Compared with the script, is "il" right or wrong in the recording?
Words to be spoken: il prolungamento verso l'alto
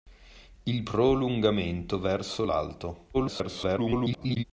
right